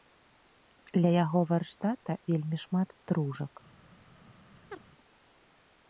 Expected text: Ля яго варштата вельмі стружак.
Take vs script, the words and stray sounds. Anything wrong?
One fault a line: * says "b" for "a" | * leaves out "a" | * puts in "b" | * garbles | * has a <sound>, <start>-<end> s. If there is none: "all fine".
* puts in "шмат"
* has a chirp, 4.7-4.8 s